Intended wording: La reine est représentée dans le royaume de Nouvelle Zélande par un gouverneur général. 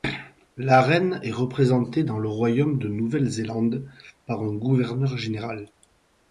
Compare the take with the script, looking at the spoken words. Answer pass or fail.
pass